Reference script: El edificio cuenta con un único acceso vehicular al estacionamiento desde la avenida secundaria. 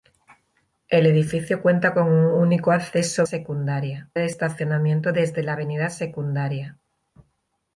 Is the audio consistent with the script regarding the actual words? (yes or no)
no